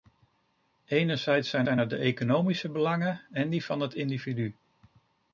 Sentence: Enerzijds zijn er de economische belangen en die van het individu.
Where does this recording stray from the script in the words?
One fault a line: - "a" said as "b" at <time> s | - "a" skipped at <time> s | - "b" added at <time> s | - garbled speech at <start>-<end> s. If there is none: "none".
- "zijn" added at 1.6 s